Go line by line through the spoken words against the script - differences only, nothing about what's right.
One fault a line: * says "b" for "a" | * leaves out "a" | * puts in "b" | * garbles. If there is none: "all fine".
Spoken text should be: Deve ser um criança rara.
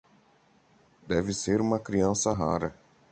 * says "uma" for "um"